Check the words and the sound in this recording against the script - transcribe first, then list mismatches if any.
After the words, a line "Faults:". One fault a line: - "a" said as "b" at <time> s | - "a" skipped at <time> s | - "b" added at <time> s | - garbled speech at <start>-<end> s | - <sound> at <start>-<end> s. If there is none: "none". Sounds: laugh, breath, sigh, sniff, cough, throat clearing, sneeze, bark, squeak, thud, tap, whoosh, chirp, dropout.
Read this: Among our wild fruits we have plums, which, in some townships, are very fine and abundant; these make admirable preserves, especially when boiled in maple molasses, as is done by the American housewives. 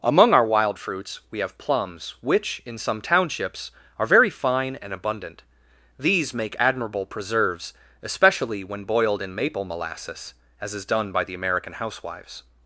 Among our wild fruits we have plums, which, in some townships, are very fine and abundant; these make admirable preserves, especially when boiled in maple molasses, as is done by the American housewives.
Faults:
none